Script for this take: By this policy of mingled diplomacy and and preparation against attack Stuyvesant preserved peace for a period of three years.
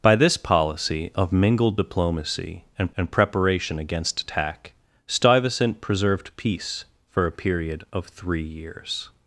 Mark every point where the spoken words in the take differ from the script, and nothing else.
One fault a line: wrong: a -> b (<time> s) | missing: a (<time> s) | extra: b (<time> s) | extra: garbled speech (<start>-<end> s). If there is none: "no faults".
no faults